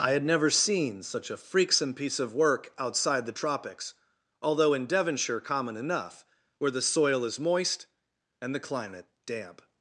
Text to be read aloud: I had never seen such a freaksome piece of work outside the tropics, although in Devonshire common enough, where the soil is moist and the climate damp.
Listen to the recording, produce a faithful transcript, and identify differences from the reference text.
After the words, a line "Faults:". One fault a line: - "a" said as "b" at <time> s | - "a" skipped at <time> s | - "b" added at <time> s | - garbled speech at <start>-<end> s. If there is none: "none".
I had never seen such a freaksome piece of work outside the tropics, although in Devonshire common enough, where the soil is moist and the climate damp.
Faults:
none